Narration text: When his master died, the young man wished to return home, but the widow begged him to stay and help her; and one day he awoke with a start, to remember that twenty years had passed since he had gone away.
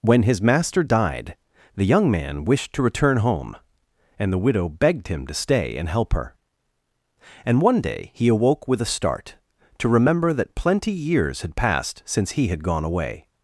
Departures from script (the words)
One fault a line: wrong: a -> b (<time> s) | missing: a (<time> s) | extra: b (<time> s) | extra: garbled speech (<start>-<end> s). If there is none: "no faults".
wrong: but -> and (4.2 s)
wrong: twenty -> plenty (10.6 s)